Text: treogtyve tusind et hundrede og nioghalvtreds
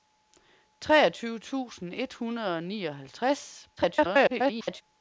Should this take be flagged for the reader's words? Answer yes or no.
yes